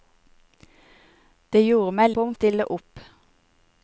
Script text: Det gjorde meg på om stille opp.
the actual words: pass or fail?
pass